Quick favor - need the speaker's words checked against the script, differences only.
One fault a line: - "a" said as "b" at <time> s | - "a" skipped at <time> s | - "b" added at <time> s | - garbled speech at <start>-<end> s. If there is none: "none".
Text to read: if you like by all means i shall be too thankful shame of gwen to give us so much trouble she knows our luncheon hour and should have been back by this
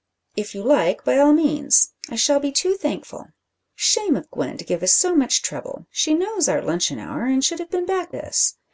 - "by" skipped at 8.2 s